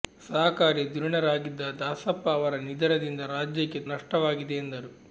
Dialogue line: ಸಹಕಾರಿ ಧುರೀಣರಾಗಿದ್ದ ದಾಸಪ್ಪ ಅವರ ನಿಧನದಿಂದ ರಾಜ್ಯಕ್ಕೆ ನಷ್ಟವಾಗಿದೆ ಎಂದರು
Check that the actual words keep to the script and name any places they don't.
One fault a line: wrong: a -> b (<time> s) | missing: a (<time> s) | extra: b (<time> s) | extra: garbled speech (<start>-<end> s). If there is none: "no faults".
no faults